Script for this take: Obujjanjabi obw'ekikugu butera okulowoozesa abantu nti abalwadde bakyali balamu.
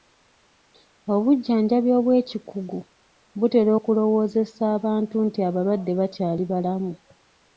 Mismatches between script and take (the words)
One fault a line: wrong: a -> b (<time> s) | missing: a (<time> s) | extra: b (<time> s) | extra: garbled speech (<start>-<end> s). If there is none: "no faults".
no faults